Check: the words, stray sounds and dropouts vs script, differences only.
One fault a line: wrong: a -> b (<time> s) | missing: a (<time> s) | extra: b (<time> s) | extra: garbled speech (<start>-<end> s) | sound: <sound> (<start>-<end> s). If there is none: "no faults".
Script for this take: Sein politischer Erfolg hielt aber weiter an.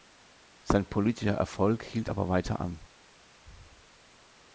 no faults